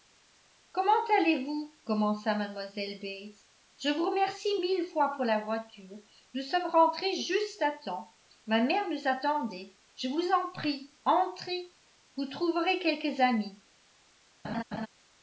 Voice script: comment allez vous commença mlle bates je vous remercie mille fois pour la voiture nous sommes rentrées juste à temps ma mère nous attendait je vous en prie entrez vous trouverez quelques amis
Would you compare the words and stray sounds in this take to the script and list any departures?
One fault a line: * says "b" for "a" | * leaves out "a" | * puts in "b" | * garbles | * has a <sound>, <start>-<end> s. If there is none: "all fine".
* has a laugh, 14.4-14.9 s